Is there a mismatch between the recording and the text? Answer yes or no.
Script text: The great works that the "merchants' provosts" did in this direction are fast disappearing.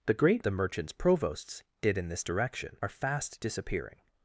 yes